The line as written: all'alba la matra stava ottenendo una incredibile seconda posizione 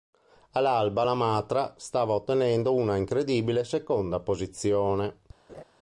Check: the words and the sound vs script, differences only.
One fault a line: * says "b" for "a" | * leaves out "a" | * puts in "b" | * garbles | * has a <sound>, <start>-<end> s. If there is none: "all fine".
* has a laugh, 5.5-5.6 s